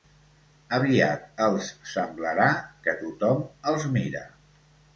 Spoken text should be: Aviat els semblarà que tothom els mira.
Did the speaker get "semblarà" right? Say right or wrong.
right